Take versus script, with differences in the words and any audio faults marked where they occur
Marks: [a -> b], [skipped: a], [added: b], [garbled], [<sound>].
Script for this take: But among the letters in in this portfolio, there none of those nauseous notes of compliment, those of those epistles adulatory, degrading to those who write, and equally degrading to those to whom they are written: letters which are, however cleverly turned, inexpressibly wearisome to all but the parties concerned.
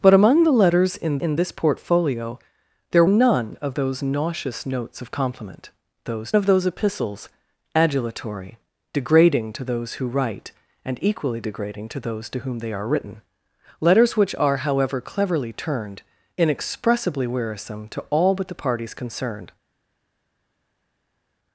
But among the letters in in this portfolio, there none of those nauseous notes of compliment, those of those epistles adulatory, degrading to those who write, and equally degrading to those to whom they are written: letters which are, however cleverly turned, inexpressibly wearisome to all but the parties concerned.